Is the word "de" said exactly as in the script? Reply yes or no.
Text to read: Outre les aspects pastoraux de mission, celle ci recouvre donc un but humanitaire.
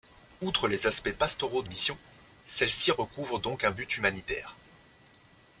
yes